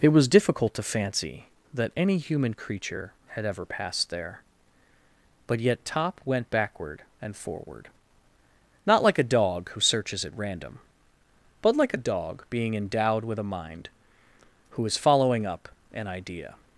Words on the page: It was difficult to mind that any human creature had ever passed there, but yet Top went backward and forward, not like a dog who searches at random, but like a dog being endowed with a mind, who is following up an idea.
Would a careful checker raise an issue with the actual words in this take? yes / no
yes